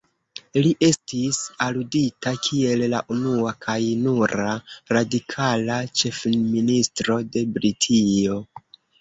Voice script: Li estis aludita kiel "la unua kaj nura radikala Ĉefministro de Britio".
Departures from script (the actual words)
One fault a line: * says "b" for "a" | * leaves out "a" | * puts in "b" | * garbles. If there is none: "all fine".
all fine